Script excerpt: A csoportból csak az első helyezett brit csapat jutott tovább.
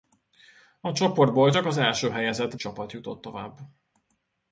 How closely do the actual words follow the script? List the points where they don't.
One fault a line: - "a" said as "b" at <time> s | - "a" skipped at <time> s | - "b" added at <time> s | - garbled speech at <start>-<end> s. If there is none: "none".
- "brit" skipped at 2.6 s